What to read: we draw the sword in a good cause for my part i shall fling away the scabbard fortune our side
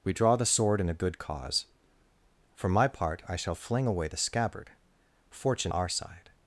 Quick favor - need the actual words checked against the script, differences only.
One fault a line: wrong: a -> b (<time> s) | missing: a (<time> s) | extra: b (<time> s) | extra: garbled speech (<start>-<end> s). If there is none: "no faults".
no faults